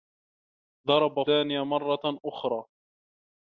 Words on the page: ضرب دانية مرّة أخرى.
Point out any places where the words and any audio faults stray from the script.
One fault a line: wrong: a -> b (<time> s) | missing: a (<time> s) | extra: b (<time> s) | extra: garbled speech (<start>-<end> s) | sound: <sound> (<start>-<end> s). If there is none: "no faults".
no faults